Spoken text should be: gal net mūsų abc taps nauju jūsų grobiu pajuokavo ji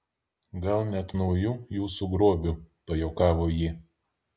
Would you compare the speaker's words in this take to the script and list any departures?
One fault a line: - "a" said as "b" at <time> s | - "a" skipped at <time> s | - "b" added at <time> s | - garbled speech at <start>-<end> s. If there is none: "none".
- "mūsų abc taps" skipped at 1.1 s